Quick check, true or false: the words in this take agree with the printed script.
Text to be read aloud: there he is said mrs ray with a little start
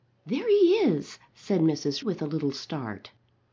false